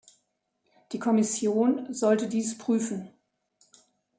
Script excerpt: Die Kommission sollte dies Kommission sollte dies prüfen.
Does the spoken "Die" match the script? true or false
true